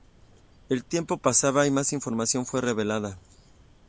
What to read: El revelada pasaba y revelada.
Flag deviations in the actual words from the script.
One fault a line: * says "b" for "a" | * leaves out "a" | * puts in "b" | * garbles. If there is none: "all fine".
* says "tiempo" for "revelada"
* puts in "más información fue"